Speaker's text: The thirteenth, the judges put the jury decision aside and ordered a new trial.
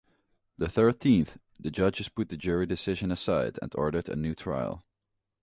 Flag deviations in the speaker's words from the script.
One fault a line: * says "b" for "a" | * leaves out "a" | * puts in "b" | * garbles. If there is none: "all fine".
all fine